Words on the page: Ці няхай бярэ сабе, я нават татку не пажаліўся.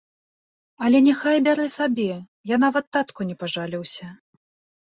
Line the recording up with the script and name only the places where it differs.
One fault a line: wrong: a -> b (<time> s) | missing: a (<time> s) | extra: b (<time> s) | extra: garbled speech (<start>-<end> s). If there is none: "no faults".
wrong: Ці -> Але (0.8 s)